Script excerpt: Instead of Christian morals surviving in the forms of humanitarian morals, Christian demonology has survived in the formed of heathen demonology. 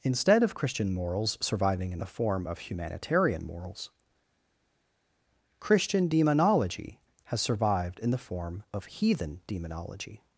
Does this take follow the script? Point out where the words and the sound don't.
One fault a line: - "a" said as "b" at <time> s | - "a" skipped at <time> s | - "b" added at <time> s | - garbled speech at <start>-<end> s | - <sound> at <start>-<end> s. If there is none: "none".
- "forms" said as "form" at 2.1 s
- "formed" said as "form" at 8.2 s